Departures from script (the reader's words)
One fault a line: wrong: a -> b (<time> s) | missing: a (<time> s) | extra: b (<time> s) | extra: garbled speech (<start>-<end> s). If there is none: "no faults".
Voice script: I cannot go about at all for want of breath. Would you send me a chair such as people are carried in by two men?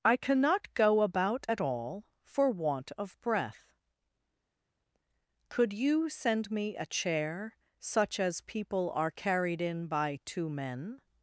wrong: Would -> Could (5.5 s)